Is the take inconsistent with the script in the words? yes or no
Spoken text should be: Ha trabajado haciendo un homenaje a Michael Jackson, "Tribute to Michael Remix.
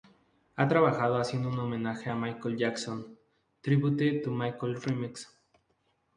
no